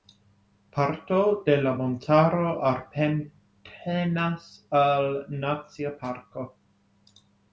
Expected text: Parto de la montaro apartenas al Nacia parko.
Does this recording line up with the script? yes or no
yes